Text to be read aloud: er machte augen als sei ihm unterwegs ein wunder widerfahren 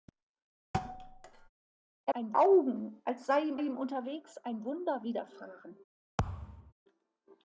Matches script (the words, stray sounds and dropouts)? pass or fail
fail